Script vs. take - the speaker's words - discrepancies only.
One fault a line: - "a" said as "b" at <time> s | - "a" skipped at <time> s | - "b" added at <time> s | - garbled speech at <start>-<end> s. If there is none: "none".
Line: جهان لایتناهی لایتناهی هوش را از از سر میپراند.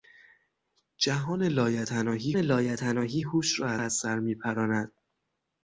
none